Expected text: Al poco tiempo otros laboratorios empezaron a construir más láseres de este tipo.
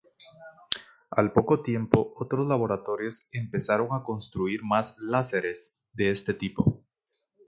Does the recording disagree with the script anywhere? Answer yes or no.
no